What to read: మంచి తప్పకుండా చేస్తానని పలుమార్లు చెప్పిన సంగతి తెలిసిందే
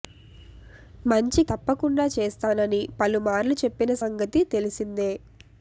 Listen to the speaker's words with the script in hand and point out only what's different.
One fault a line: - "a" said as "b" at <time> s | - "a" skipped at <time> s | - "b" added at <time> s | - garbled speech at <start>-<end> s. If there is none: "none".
none